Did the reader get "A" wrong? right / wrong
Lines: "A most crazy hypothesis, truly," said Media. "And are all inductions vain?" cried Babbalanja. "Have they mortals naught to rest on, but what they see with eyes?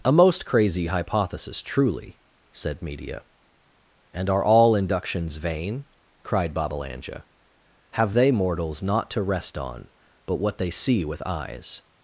right